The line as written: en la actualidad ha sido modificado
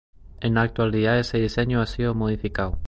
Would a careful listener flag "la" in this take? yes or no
no